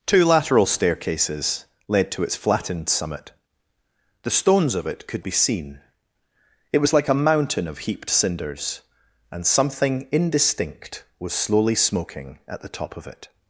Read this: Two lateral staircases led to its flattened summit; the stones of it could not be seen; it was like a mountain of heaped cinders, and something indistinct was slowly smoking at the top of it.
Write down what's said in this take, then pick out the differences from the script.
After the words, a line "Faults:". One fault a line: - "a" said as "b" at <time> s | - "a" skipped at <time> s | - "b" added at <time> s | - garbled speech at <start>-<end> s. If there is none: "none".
Two lateral staircases led to its flattened summit; the stones of it could be seen; it was like a mountain of heaped cinders, and something indistinct was slowly smoking at the top of it.
Faults:
- "not" skipped at 5.2 s